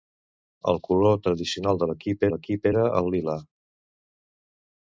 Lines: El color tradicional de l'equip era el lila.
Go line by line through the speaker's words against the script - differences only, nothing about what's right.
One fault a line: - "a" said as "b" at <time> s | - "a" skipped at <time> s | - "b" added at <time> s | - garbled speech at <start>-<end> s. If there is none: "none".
- "l'equip" added at 2.3 s